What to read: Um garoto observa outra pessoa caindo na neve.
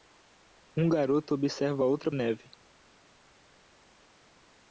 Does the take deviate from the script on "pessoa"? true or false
true